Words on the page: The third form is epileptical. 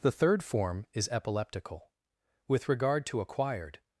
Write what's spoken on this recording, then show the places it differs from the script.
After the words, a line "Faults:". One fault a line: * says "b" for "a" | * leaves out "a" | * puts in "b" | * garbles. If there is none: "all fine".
The third form is epileptical. With regard to acquired
Faults:
* puts in "With regard to acquired"